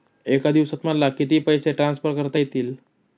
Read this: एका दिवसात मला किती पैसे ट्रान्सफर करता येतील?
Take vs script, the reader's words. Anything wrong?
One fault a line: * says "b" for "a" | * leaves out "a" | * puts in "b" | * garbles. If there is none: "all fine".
all fine